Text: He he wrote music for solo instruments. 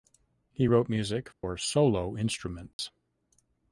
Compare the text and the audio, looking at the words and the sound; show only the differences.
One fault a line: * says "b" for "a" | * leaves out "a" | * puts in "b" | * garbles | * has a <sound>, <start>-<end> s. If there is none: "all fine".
* leaves out "he"
* has a dropout, 1.3-1.4 s
* has a dropout, 2.7-2.8 s